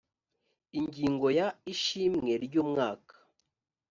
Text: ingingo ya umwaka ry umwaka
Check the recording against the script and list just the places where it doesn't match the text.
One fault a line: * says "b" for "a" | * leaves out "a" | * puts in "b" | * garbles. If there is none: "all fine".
* says "ishimwe" for "umwaka"